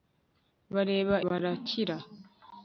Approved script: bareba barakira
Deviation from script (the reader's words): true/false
false